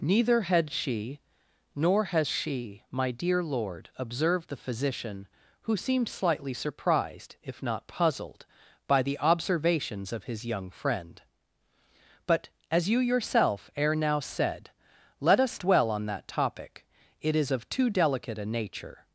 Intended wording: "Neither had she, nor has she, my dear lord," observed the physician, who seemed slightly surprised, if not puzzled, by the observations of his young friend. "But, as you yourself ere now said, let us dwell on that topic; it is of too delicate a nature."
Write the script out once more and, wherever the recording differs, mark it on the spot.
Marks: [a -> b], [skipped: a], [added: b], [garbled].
"Neither had she, nor has she, my dear lord," observed the physician, who seemed slightly surprised, if not puzzled, by the observations of his young friend. "But, as you yourself ere now said, let us dwell on that topic; it is of too delicate a nature."